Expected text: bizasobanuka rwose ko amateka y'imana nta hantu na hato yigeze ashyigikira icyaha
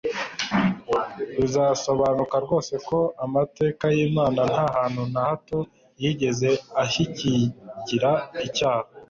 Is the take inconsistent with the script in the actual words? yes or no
no